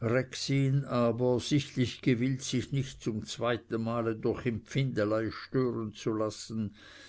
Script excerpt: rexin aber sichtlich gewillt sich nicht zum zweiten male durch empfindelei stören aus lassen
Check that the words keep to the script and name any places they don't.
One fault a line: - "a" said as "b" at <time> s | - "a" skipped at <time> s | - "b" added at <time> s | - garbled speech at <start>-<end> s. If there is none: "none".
- "aus" said as "zu" at 5.9 s